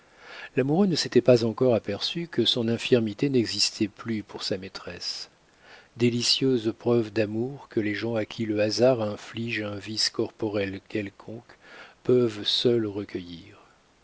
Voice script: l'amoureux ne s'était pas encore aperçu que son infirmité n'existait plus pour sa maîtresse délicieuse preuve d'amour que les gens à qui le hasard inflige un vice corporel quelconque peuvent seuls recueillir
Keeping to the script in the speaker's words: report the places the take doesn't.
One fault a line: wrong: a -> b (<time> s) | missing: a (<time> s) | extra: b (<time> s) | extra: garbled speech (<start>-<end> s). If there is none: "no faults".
no faults